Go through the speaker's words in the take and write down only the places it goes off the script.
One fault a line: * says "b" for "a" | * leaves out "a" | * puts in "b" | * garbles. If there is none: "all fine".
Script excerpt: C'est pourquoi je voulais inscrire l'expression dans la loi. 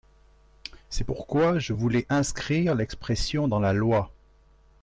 all fine